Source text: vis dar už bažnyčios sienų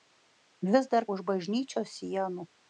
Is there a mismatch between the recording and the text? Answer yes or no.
no